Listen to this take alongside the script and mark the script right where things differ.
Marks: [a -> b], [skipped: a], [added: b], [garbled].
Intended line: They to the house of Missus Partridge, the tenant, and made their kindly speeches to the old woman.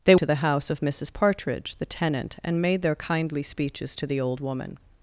They to the house of Missus Partridge, the tenant, and made their kindly speeches to the old woman.